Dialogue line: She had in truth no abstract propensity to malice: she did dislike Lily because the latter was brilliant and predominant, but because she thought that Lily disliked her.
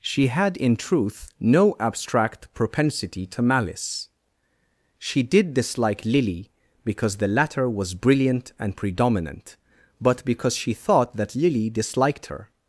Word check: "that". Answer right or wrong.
right